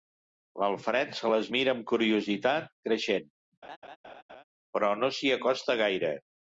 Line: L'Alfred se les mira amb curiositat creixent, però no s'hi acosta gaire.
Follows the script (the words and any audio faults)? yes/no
no